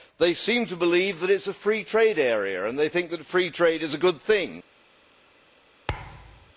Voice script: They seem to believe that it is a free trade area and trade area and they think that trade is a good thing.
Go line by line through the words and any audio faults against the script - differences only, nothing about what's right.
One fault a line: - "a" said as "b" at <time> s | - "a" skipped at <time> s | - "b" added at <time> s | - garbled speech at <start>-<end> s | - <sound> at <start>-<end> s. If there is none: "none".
- "trade area and" skipped at 2.8 s
- "free" added at 3.2 s
- thud at 5.9-6.5 s